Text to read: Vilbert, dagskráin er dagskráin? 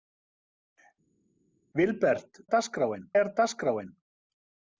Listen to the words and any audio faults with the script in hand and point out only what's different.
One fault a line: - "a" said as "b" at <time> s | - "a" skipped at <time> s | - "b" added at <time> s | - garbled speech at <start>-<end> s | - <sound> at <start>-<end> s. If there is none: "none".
none